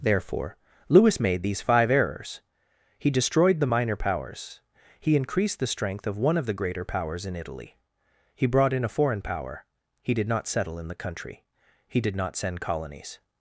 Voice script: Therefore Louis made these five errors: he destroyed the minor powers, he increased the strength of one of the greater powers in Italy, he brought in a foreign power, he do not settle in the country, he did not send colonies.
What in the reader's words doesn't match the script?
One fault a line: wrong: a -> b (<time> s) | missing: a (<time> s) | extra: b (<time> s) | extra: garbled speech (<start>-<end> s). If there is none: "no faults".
wrong: do -> did (10.1 s)